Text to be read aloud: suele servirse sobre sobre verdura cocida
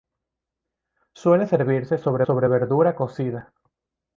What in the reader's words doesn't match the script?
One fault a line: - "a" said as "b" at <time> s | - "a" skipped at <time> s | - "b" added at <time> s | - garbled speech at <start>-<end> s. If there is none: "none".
none